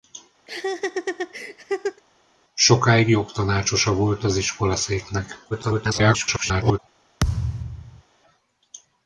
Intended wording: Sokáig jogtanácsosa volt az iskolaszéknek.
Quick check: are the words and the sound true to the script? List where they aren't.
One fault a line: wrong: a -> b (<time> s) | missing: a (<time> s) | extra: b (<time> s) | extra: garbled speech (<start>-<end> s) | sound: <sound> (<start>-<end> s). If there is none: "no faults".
sound: laugh (0.5-2.0 s)
extra: garbled speech (5.5-6.8 s)
sound: thud (7.2-8.0 s)